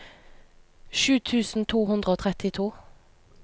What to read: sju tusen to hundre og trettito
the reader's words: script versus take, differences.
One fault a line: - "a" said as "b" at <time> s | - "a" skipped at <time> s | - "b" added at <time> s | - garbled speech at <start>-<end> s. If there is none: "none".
none